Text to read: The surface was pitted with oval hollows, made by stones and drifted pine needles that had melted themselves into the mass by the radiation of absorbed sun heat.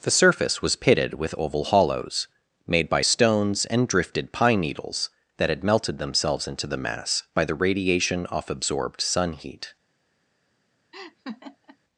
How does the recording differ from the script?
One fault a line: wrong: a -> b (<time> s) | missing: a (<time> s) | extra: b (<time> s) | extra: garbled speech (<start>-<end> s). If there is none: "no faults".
wrong: of -> off (8.3 s)